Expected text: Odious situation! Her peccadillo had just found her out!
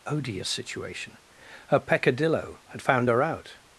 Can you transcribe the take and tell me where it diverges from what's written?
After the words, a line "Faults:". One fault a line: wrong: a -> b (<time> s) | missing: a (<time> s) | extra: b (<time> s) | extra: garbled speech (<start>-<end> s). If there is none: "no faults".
Odious situation! Her peccadillo had found her out!
Faults:
missing: just (2.8 s)